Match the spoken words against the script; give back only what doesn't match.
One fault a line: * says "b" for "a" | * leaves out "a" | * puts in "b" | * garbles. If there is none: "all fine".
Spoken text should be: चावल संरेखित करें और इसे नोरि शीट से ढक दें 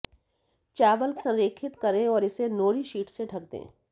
all fine